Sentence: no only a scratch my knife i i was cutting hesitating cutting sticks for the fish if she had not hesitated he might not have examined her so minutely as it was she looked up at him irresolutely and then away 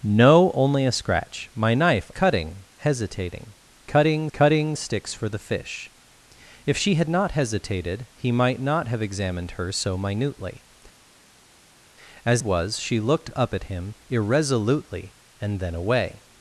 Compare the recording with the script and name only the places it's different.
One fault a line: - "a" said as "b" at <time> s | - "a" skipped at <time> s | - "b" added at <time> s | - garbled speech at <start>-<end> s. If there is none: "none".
- "i i was" skipped at 2.1 s
- "cutting" added at 4.3 s
- "it" skipped at 12.4 s